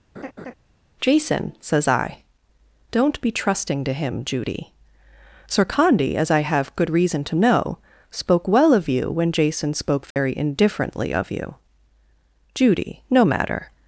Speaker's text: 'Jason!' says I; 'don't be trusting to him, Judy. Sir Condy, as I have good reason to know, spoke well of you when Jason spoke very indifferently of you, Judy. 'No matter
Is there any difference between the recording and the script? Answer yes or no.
no